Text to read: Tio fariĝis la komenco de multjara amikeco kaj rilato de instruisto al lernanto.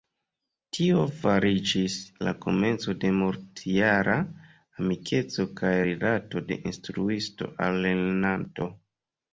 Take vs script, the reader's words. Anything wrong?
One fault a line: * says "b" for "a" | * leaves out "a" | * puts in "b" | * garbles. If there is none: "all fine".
all fine